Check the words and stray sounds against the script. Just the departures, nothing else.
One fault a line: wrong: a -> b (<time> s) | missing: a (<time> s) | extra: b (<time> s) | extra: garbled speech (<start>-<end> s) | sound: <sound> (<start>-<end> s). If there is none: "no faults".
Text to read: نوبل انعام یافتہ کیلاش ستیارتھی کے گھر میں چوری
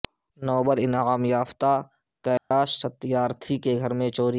sound: dropout (2.4-2.5 s)